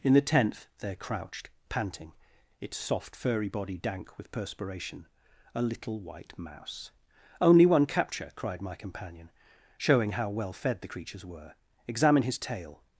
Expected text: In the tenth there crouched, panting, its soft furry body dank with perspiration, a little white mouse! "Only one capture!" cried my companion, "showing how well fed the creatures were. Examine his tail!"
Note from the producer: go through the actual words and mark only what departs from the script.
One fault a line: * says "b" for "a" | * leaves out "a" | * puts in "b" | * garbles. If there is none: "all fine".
all fine